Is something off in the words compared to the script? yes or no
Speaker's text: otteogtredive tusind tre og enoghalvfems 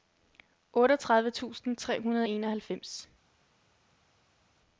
yes